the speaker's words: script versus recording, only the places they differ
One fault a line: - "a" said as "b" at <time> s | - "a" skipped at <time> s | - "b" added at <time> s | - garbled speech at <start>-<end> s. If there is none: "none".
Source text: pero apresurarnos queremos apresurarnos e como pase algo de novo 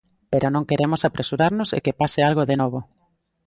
- "apresurarnos" said as "non" at 0.5 s
- "como" said as "que" at 1.9 s